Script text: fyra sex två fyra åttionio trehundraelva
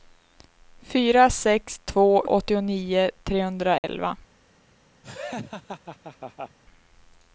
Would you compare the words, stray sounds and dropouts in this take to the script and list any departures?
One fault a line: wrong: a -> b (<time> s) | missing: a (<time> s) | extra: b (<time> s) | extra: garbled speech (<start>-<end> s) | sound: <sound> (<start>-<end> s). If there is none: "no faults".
missing: fyra (2.2 s)
sound: dropout (3.8-3.8 s)
sound: laugh (5.0-6.6 s)